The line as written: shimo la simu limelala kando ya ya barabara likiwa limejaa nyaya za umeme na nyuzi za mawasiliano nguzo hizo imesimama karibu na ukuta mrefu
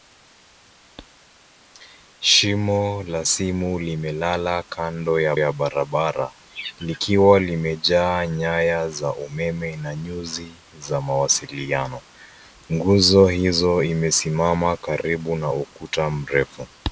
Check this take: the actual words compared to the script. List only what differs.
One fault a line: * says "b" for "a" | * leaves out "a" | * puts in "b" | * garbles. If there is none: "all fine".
all fine